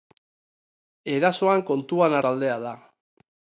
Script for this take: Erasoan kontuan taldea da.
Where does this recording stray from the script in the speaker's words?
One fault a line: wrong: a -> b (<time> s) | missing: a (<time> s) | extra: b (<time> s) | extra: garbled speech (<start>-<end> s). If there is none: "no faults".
no faults